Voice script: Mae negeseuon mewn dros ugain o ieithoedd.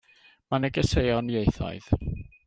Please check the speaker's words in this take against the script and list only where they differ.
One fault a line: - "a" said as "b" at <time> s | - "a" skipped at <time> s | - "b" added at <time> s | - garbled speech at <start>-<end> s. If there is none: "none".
- "mewn dros ugain" skipped at 1.3 s